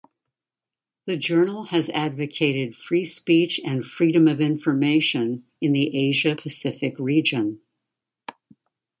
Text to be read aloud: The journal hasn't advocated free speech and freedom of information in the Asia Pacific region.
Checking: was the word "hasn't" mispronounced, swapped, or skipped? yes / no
yes